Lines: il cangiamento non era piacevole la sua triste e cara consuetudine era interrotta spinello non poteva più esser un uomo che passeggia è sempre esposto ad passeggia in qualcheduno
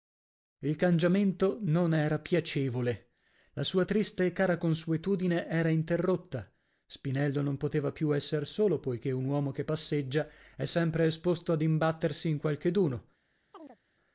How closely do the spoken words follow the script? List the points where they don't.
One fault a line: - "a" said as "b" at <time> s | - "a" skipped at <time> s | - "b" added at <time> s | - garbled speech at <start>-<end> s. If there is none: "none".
- "solo poichè" added at 8.5 s
- "passeggia" said as "imbattersi" at 11.6 s